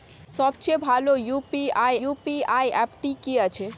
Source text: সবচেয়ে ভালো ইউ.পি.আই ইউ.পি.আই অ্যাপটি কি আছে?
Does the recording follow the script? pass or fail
pass